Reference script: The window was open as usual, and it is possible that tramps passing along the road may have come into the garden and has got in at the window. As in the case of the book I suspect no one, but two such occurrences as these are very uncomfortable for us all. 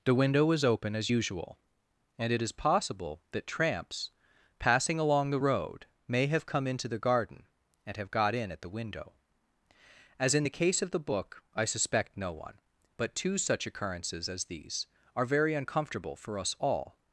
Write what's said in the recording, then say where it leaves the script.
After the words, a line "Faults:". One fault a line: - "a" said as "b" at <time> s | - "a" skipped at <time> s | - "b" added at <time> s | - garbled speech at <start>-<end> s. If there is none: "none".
The window was open as usual, and it is possible that tramps passing along the road may have come into the garden and have got in at the window. As in the case of the book I suspect no one, but two such occurrences as these are very uncomfortable for us all.
Faults:
- "has" said as "have" at 8.0 s